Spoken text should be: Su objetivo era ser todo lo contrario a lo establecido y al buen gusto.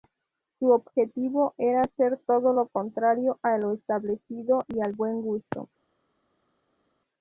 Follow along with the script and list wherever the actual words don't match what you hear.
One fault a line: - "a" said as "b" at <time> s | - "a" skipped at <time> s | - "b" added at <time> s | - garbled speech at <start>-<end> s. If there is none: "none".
none